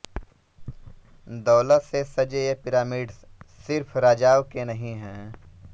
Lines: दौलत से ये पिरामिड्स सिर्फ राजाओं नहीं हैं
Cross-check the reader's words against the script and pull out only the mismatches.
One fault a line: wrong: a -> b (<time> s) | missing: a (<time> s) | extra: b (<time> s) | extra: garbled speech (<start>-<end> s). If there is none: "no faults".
extra: सजे (2.1 s)
extra: के (4.5 s)